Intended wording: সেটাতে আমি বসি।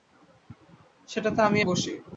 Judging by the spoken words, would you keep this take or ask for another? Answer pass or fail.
pass